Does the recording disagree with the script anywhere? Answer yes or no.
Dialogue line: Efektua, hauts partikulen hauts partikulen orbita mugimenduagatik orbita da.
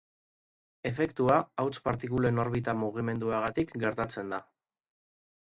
yes